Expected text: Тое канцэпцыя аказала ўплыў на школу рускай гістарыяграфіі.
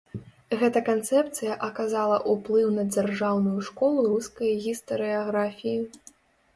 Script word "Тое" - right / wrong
wrong